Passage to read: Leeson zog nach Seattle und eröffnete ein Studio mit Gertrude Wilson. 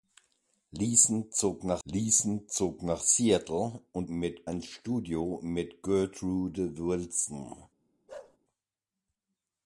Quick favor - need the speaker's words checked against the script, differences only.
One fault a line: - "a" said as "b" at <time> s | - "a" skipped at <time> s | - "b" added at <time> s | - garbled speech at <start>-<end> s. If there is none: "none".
- "leeson zog nach" added at 1.8 s
- "eröffnete" said as "mit" at 4.1 s